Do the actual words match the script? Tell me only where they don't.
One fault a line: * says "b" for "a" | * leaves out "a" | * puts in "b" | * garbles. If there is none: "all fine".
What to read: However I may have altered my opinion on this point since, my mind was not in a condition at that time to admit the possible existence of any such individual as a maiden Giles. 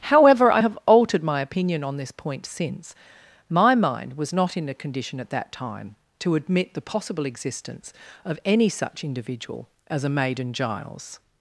* leaves out "may"